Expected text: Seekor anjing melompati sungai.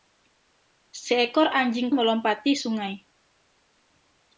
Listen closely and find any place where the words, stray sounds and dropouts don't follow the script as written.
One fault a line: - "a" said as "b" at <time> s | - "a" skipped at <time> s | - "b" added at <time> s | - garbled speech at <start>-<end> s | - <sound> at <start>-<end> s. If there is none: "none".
none